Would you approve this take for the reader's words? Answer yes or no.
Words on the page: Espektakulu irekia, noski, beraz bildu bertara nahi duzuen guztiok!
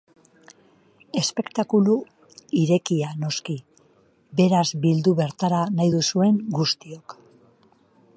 yes